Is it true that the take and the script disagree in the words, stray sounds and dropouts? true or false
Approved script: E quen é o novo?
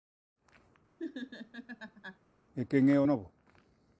true